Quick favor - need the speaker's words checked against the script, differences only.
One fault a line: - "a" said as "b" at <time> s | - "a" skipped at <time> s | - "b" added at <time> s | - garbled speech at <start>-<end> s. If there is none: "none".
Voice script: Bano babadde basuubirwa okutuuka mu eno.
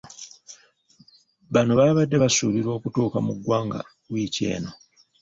- "ggwanga wiiki" added at 3.4 s